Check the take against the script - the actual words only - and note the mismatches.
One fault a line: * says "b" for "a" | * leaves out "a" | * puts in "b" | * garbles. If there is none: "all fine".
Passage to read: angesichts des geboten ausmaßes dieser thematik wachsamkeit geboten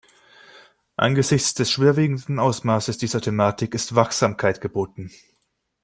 * says "schwerwiegenden" for "geboten"
* puts in "ist"